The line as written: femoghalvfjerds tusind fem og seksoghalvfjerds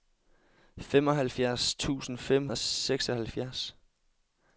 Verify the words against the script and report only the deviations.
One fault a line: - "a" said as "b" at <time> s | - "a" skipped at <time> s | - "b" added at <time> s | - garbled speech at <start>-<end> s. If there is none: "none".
none